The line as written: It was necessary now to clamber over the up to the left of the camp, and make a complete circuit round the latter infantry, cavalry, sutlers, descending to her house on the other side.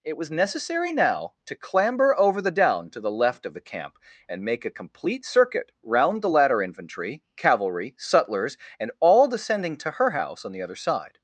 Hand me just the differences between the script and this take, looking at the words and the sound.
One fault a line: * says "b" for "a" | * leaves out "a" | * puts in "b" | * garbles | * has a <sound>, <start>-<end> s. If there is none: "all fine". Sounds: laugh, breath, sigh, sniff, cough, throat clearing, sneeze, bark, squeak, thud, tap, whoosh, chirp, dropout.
* says "down" for "up"
* puts in "and all"